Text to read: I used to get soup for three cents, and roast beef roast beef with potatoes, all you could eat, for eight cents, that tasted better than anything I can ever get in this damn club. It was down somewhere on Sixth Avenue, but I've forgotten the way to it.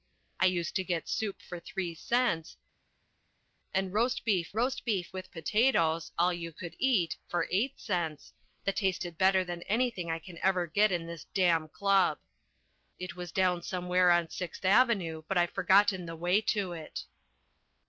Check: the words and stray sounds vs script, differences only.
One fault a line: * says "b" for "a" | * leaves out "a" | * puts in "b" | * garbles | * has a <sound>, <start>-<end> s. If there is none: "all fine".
all fine